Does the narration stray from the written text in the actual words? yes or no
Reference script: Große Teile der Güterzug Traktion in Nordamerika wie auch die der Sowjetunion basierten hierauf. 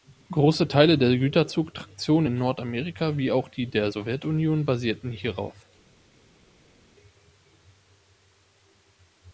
no